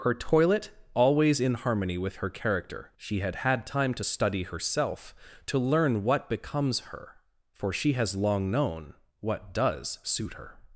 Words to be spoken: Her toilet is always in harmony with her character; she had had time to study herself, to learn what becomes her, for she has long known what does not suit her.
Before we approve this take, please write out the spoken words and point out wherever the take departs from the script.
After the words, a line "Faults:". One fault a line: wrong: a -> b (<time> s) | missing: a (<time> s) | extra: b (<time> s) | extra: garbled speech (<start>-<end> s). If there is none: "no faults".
Her toilet always in harmony with her character; she had had time to study herself, to learn what becomes her, for she has long known what does suit her.
Faults:
missing: is (0.7 s)
missing: not (10.0 s)